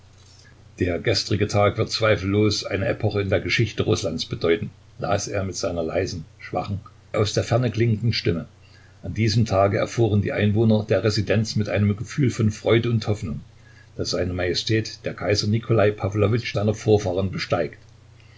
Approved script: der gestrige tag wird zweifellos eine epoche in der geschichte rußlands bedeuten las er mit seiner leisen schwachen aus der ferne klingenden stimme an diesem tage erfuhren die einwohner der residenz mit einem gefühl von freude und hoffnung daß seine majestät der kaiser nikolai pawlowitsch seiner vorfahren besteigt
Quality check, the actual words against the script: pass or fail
pass